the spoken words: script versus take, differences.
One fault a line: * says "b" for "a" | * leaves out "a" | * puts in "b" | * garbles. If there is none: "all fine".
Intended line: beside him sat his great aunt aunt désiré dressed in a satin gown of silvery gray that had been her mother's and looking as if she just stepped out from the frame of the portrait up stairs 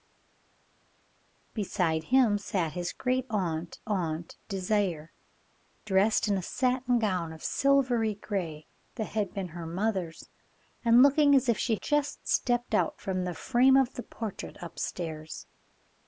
all fine